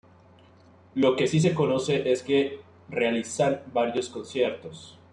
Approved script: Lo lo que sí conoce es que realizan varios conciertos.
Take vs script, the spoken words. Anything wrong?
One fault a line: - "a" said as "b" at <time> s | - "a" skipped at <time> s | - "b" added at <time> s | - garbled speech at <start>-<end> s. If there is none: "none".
- "lo" skipped at 1.1 s
- "se" added at 1.4 s